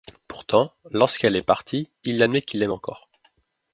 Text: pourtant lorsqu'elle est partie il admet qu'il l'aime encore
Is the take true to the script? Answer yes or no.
yes